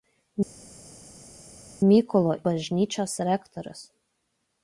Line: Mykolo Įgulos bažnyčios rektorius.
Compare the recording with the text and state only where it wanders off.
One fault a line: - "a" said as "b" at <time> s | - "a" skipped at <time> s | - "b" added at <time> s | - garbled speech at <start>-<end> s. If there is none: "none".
- "Įgulos" skipped at 2.3 s